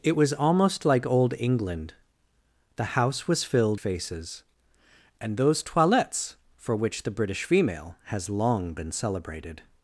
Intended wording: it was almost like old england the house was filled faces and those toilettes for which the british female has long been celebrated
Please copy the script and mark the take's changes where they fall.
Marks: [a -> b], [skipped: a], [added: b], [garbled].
it was almost like old england the house was filled faces and those toilettes for which the british female has long been celebrated